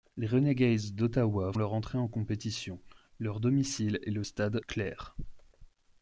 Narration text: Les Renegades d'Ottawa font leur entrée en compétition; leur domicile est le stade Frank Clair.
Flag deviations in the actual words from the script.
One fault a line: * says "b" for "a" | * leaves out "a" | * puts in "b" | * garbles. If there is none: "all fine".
* leaves out "font"
* leaves out "Frank"